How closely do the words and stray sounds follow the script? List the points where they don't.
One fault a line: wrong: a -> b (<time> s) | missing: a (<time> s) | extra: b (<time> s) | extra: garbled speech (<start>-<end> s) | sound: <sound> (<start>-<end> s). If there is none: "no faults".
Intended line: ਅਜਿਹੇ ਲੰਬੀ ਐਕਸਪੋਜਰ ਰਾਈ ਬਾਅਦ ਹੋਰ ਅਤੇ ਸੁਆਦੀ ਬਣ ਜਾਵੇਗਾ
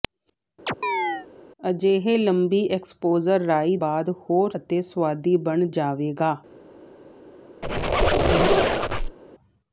sound: chirp (0.7-1.3 s)
sound: squeak (7.6-9.2 s)